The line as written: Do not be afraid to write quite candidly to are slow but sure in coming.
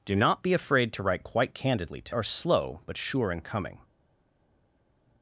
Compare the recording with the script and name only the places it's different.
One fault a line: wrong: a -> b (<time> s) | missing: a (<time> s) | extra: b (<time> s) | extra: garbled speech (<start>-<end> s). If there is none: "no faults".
no faults